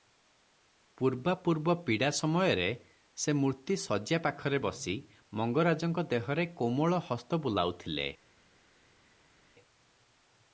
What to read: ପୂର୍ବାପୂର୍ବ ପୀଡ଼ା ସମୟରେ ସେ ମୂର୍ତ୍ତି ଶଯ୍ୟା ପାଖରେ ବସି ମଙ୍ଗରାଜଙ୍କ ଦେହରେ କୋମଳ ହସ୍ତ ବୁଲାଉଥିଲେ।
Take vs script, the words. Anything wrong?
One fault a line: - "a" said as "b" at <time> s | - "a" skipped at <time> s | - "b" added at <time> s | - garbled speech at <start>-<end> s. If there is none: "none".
none